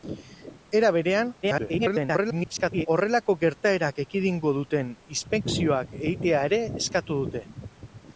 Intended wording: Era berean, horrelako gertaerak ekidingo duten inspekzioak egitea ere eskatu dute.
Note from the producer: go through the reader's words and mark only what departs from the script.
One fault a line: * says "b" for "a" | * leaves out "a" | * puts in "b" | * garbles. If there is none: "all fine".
* garbles